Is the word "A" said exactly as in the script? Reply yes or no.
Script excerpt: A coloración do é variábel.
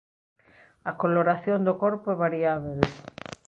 yes